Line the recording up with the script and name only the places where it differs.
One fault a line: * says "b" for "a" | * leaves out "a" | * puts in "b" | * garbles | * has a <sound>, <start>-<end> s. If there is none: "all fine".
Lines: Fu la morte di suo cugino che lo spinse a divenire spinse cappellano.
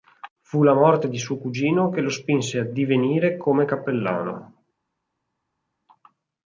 * says "come" for "spinse"